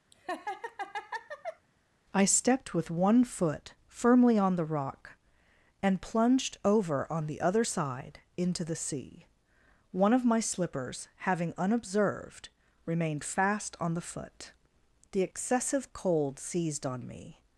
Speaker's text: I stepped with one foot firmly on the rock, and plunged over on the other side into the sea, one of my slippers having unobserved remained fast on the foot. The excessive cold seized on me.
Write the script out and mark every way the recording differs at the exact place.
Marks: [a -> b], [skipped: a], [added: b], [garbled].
I stepped with one foot firmly on the rock, and plunged over on the other side into the sea, one of my slippers having unobserved remained fast on the foot. The excessive cold seized on me.